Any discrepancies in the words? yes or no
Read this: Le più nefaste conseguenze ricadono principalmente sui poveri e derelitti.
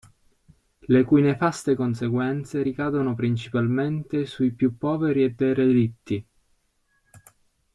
yes